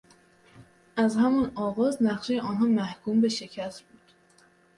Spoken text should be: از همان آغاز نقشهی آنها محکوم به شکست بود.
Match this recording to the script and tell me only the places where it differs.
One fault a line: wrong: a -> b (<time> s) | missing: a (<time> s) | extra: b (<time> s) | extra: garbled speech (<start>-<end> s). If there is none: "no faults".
no faults